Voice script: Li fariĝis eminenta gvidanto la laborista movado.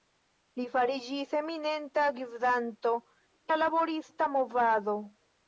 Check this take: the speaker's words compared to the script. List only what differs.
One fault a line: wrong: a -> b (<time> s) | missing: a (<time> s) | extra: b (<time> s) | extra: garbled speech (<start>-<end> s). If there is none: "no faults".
no faults